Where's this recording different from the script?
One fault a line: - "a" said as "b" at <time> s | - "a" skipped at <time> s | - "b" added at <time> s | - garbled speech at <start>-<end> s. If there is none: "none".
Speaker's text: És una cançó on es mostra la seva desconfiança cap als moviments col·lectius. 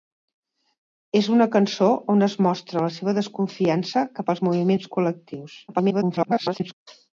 - garbled speech at 5.7-6.7 s